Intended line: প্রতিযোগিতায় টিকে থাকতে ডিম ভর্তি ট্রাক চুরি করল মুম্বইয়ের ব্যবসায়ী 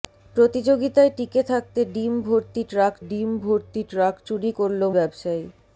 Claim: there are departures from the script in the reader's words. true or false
true